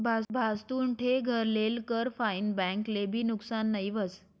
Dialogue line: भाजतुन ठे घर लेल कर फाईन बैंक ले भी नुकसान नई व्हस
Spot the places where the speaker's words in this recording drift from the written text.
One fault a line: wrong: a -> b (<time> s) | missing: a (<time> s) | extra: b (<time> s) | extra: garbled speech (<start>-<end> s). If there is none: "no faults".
no faults